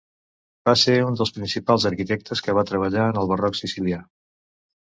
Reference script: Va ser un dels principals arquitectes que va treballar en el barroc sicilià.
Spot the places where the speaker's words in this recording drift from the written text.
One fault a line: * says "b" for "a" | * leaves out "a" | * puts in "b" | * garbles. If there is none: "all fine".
all fine